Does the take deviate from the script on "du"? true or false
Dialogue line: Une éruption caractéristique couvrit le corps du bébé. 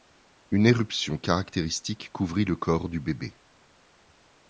false